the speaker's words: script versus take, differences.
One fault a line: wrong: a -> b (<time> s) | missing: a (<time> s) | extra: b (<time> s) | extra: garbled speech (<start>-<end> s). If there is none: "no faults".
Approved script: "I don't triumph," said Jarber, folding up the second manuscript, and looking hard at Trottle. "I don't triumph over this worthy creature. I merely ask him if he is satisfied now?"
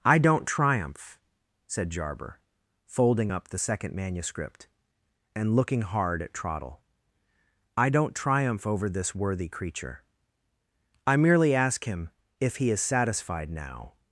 no faults